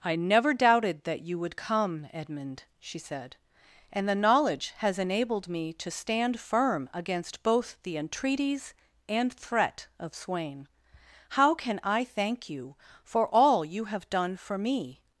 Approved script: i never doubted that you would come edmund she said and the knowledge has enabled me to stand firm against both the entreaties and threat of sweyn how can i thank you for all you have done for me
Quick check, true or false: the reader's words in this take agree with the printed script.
true